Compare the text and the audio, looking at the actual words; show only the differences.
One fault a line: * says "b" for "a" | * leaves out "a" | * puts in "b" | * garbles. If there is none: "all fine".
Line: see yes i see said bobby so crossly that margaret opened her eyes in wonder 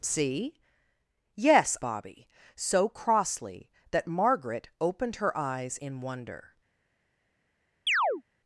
* leaves out "i see said"